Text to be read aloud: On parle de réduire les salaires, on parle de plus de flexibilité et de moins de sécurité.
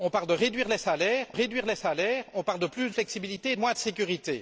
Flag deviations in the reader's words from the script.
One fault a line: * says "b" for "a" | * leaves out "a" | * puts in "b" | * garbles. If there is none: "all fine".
* puts in "réduire les salaires"
* leaves out "de"